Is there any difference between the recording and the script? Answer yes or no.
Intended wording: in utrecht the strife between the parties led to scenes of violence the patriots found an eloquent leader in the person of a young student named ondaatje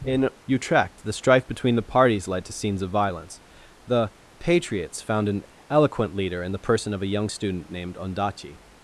no